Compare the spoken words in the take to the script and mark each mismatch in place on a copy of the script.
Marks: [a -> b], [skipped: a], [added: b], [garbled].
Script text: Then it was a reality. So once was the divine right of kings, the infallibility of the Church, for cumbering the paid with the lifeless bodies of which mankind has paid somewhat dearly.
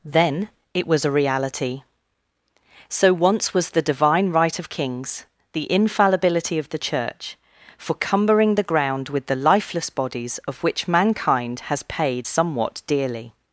Then it was a reality. So once was the divine right of kings, the infallibility of the Church, for cumbering the [paid -> ground] with the lifeless bodies of which mankind has paid somewhat dearly.